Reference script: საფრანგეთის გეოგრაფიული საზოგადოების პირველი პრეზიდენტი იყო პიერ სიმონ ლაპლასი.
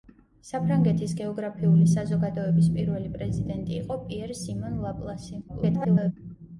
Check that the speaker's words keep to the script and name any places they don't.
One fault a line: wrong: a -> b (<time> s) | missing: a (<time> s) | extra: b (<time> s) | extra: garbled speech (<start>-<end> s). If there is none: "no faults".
extra: garbled speech (5.5-6.1 s)